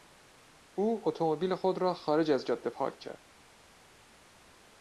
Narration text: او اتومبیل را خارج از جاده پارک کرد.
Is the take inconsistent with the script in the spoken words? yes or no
yes